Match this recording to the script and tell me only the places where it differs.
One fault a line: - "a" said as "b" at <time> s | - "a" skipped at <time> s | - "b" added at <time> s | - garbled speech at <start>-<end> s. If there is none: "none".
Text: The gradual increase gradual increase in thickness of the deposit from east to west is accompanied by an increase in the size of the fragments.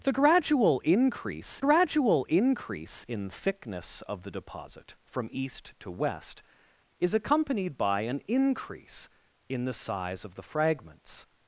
none